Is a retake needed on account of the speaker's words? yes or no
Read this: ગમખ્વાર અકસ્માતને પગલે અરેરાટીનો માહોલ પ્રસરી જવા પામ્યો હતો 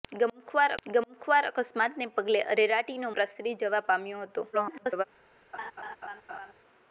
yes